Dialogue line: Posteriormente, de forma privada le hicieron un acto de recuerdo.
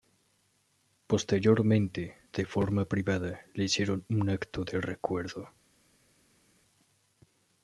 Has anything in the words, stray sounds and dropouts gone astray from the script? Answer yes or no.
no